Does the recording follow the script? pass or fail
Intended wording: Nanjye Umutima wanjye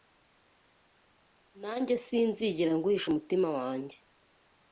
fail